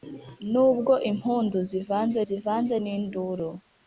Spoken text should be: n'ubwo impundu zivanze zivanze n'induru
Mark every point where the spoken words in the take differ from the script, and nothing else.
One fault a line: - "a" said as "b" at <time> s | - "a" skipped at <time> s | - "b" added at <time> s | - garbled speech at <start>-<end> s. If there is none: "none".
none